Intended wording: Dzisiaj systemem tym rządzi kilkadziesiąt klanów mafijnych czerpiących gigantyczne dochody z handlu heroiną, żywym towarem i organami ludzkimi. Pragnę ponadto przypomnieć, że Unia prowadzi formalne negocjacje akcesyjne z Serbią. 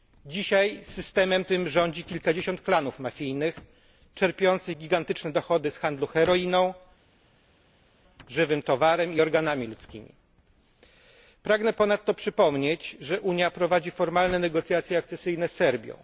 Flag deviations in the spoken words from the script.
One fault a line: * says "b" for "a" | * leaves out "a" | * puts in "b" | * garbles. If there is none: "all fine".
all fine